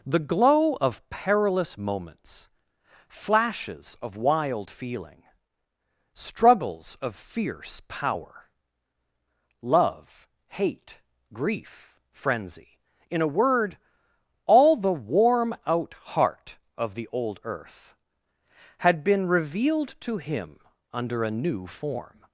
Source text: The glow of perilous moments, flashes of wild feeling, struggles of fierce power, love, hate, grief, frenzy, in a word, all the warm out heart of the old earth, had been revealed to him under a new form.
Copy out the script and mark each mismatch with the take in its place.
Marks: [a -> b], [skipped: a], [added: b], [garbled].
The glow of perilous moments, flashes of wild feeling, struggles of fierce power, love, hate, grief, frenzy, in a word, all the warm out heart of the old earth, had been revealed to him under a new form.